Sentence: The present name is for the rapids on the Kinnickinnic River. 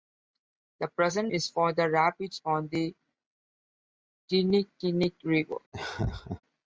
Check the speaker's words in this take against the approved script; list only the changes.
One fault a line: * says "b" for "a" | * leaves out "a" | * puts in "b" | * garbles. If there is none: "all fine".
* leaves out "name"